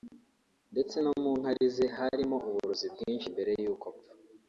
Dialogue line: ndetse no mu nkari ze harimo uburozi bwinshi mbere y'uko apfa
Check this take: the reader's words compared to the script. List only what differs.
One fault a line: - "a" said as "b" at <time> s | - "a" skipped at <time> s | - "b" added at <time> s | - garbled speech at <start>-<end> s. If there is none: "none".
none